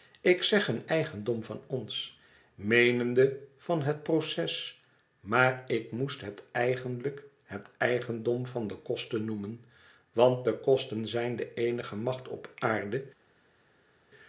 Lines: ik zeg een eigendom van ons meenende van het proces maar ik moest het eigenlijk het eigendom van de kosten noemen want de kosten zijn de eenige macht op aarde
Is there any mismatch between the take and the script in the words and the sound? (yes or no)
no